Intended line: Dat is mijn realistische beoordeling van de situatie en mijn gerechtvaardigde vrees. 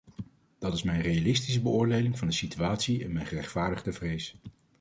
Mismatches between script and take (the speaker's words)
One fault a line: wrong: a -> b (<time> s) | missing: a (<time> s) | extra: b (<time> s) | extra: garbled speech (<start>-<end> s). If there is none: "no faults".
no faults